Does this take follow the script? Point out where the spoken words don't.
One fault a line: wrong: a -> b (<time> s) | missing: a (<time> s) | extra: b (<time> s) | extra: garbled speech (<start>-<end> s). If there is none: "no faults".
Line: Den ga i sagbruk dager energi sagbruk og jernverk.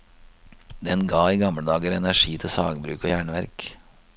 wrong: sagbruk -> gamle (1.4 s)
extra: til (2.4 s)